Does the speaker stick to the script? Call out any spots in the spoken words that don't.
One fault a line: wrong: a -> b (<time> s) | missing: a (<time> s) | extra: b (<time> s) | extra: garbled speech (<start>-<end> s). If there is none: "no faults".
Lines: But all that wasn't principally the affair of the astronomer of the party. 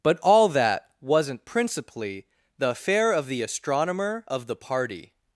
no faults